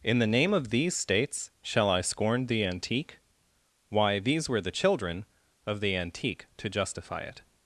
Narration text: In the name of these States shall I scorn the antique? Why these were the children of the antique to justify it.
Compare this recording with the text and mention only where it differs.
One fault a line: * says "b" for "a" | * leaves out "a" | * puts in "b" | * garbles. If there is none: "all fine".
all fine